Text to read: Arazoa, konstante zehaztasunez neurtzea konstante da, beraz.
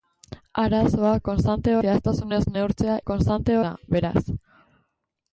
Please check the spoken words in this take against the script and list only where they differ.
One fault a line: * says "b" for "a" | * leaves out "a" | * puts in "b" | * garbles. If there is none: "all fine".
all fine